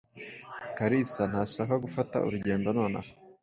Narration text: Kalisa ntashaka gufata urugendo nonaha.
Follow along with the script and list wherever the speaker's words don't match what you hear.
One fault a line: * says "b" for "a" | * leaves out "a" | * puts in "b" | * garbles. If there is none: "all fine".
all fine